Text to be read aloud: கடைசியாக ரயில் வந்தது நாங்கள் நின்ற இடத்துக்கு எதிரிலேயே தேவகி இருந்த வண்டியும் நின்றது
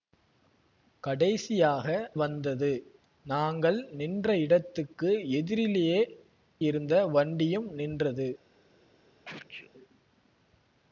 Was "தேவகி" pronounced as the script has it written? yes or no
no